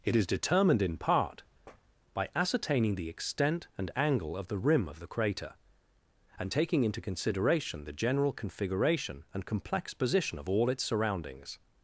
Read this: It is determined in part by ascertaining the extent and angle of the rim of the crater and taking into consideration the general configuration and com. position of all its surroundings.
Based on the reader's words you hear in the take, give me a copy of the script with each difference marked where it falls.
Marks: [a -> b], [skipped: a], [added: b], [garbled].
It is determined in part by ascertaining the extent and angle of the rim of the crater and taking into consideration the general configuration and [com. -> complex] position of all its surroundings.